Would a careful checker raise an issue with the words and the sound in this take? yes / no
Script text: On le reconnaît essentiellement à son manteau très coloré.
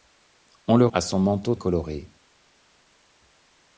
yes